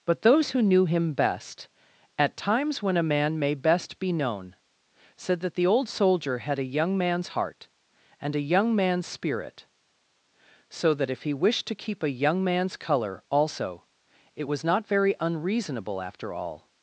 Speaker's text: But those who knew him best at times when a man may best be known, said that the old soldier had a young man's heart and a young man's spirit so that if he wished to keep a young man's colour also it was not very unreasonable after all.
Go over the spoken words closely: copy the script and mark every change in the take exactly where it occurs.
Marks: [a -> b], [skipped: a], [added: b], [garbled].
But those who knew him best at times when a man may best be known, said that the old soldier had a young man's heart and a young man's spirit so that if he wished to keep a young man's colour also it was not very unreasonable after all.